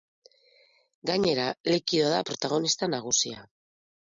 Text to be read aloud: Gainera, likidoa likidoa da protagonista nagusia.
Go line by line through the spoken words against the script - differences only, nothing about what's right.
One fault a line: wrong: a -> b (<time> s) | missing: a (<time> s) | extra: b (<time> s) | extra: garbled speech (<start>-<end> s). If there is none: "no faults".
missing: likidoa (2.1 s)